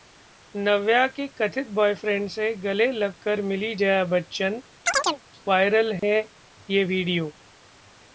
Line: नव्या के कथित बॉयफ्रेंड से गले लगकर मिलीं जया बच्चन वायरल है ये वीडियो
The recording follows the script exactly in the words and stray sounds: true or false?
false